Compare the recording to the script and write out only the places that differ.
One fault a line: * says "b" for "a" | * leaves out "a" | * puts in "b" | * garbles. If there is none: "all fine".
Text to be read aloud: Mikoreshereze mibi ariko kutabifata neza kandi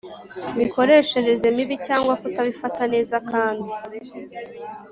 * says "cyangwa" for "ariko"